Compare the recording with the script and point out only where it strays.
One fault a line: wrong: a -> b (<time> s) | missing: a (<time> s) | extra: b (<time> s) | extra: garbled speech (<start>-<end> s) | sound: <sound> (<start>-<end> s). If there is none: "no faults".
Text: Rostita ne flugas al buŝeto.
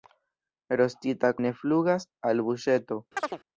sound: chirp (3.2-3.4 s)